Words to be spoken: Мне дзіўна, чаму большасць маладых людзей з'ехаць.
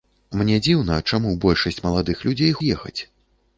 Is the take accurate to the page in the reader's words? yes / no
yes